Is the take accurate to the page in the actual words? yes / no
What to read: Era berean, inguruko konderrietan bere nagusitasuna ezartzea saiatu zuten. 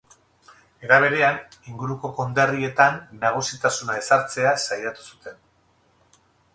no